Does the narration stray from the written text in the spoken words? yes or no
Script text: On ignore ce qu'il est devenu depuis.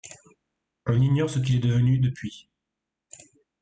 no